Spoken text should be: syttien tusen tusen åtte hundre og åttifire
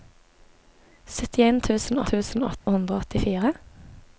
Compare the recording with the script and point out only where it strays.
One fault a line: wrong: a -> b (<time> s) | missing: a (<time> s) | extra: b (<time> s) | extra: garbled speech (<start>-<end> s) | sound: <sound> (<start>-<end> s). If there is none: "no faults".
sound: dropout (2.6-2.7 s)